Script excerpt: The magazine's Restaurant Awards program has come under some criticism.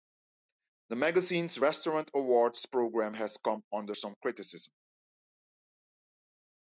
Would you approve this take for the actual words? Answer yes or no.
yes